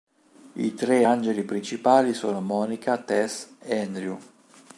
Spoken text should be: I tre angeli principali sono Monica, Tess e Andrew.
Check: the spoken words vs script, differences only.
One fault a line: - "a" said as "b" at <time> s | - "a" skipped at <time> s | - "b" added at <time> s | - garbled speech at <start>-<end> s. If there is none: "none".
none